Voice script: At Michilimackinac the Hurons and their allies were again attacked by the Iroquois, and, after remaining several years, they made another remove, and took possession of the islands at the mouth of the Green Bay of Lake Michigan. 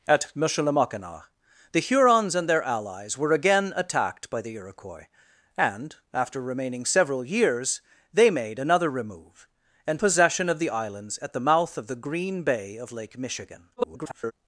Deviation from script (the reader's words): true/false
true